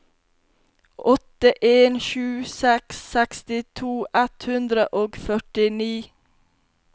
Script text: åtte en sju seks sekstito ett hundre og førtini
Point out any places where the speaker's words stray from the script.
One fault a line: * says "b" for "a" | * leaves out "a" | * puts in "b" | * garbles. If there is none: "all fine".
all fine